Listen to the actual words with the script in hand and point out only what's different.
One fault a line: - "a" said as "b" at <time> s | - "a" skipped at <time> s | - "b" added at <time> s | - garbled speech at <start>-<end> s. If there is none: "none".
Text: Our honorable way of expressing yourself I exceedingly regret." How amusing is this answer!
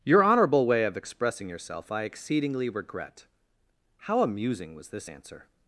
- "Our" said as "Your" at 0.0 s
- "is" said as "was" at 4.7 s